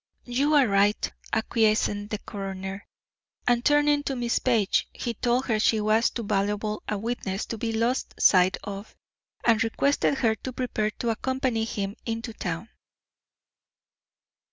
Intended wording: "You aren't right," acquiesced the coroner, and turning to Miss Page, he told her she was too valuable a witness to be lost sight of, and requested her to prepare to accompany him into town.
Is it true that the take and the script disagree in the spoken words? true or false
true